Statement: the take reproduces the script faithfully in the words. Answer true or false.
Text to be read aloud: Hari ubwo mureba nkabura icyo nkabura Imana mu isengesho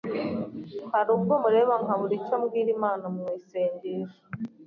false